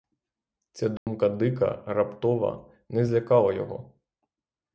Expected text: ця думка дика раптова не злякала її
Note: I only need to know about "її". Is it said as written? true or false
false